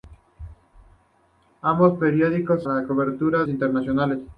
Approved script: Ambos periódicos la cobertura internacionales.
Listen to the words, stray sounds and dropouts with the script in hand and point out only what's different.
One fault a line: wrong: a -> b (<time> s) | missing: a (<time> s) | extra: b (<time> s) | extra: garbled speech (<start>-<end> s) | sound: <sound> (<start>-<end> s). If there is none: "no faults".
no faults